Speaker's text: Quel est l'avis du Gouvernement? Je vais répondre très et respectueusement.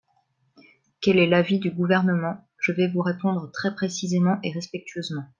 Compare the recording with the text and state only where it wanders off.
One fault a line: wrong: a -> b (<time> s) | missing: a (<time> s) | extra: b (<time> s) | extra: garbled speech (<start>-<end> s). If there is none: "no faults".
extra: vous (2.9 s)
extra: précisément (3.7 s)